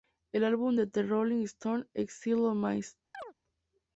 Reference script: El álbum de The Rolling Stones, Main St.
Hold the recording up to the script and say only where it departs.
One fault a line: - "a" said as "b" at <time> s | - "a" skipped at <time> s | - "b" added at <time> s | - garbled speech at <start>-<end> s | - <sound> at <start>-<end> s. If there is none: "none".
- "Exile On" added at 1.9 s
- chirp at 3.1-3.3 s